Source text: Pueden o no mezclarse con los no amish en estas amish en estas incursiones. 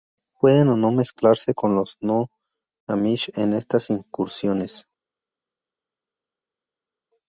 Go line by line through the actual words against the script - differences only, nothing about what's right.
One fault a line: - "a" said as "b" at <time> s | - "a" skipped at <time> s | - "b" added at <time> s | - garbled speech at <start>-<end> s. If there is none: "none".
- "amish en estas" skipped at 3.9 s